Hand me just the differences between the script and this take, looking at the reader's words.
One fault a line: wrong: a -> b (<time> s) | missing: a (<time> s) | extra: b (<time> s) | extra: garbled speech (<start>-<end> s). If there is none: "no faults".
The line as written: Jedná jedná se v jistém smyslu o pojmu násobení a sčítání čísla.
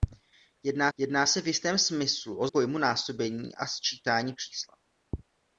no faults